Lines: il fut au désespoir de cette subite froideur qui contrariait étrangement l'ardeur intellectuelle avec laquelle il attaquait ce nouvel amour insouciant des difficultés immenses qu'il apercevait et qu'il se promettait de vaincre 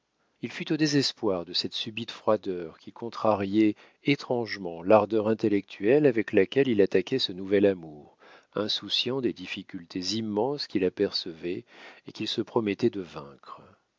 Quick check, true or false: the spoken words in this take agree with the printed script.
true